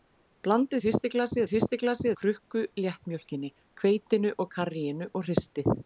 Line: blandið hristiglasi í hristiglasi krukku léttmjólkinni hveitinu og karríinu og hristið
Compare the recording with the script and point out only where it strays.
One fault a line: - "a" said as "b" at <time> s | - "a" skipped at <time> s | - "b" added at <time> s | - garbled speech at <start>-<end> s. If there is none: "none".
none